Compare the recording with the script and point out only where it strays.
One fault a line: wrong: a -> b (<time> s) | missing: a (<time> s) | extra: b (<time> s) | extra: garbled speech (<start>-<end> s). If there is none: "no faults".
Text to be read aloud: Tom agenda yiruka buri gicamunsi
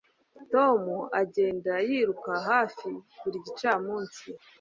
extra: hafi (2.5 s)